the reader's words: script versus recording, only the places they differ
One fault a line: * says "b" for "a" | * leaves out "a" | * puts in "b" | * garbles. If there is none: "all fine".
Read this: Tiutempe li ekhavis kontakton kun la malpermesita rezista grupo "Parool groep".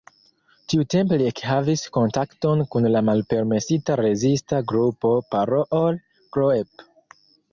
all fine